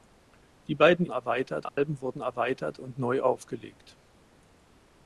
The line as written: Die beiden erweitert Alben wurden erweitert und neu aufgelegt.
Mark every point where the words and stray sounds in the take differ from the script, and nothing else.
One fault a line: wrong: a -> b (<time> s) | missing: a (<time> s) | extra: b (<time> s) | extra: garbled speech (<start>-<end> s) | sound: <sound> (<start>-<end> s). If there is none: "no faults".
sound: dropout (1.7-1.8 s)